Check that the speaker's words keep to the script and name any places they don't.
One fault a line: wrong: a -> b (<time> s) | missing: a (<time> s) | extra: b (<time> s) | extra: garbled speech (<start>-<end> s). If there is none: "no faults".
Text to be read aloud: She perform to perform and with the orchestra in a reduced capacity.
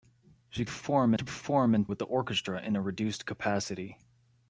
no faults